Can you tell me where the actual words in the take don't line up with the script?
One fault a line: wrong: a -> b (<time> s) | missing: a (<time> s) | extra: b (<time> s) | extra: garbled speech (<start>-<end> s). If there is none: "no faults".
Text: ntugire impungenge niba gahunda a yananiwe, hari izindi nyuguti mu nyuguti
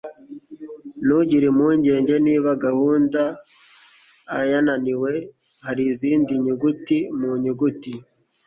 no faults